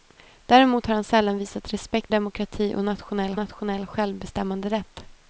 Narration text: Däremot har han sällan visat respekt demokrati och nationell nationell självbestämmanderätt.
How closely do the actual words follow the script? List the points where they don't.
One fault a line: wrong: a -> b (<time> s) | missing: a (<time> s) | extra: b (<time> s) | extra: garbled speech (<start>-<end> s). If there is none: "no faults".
no faults